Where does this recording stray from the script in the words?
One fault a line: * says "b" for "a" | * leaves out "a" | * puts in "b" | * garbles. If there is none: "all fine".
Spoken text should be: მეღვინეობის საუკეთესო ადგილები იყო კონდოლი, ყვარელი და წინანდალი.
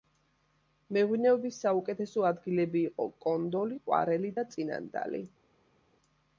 all fine